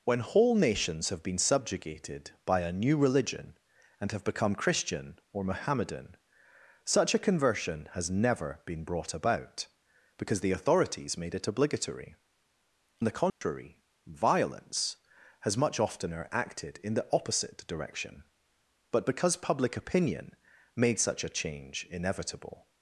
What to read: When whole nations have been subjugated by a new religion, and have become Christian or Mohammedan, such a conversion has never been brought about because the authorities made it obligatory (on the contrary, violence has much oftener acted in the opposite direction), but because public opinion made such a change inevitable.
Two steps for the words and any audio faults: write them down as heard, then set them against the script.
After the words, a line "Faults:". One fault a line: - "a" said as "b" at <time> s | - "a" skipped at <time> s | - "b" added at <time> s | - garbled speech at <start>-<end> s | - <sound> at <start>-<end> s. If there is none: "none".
When whole nations have been subjugated by a new religion, and have become Christian or Mohammedan, such a conversion has never been brought about because the authorities made it obligatory (the contrary, violence has much oftener acted in the opposite direction), but because public opinion made such a change inevitable.
Faults:
- "on" skipped at 12.2 s
- dropout at 13.3-13.4 s